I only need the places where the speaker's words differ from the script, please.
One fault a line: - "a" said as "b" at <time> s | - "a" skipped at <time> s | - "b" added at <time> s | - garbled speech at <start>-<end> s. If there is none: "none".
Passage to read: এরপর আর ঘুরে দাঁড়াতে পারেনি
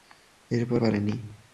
- "আর ঘুরে দাঁড়াতে" skipped at 0.8 s